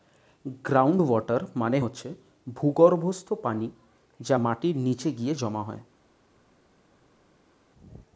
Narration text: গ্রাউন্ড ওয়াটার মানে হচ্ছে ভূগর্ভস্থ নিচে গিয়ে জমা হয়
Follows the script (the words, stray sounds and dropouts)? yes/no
no